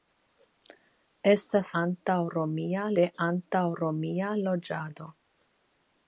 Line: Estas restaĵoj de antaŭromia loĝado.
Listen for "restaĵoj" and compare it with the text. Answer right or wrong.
wrong